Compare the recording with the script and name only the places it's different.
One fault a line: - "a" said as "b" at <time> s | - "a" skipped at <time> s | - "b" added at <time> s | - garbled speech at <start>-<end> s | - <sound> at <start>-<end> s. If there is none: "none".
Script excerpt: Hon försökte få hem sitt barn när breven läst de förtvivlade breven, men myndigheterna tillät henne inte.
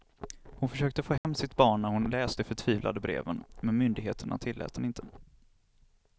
- dropout at 1.2-1.2 s
- "breven" said as "hon" at 1.9 s